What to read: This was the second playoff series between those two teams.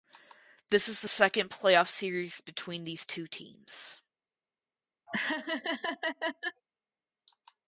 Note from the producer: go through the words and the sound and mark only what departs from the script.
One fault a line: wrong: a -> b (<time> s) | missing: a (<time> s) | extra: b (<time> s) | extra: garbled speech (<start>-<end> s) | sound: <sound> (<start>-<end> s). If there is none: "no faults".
wrong: those -> these (2.8 s)
sound: laugh (5.1-6.6 s)